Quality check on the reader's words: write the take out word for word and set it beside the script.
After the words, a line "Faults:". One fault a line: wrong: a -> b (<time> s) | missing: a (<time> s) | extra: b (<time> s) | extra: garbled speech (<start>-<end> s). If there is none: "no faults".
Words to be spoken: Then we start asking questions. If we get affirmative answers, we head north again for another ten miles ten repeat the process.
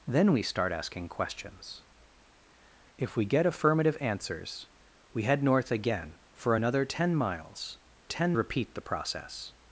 Then we start asking questions. If we get affirmative answers, we head north again for another ten miles ten repeat the process.
Faults:
no faults